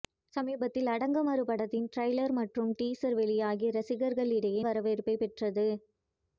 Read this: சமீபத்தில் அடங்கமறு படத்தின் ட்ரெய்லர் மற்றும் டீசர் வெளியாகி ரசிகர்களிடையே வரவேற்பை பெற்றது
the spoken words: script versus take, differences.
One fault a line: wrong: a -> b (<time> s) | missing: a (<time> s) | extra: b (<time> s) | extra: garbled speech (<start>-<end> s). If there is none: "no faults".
no faults